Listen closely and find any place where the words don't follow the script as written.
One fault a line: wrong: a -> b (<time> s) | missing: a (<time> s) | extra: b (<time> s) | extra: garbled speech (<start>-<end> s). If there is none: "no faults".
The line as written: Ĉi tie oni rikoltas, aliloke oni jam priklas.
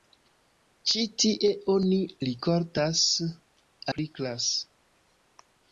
missing: aliloke oni jam (3.0 s)